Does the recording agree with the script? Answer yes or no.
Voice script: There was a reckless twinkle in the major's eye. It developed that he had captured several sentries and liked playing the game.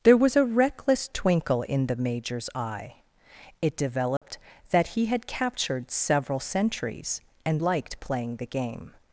no